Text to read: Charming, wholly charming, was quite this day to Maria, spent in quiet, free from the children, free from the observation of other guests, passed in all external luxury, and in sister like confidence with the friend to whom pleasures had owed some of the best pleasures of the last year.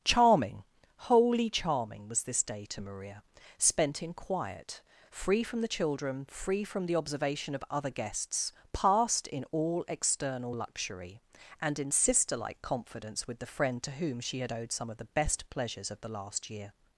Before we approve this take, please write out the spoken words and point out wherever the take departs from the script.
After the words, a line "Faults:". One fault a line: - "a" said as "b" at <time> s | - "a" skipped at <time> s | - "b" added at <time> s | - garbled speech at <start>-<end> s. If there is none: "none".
Charming, wholly charming, was this day to Maria, spent in quiet, free from the children, free from the observation of other guests, passed in all external luxury, and in sister like confidence with the friend to whom she had owed some of the best pleasures of the last year.
Faults:
- "quite" skipped at 2.2 s
- "pleasures" said as "she" at 14.2 s